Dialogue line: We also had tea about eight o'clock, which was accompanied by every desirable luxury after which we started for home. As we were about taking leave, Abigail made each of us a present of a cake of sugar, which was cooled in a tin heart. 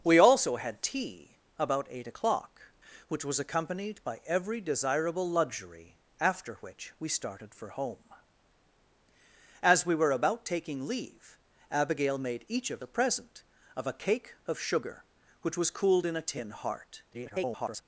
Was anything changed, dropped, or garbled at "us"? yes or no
yes